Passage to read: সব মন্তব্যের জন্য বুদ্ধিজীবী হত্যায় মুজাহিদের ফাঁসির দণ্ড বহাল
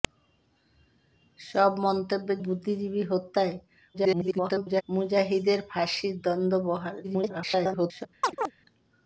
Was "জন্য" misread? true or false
true